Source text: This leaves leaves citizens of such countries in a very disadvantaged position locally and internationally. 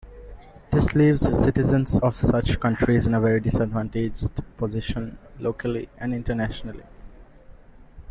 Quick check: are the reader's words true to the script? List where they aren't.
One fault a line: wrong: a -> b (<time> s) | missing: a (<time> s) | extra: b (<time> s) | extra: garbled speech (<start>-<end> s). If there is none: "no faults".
missing: leaves (1.2 s)